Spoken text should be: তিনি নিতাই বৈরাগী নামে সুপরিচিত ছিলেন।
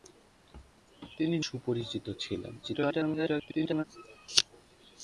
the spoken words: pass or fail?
fail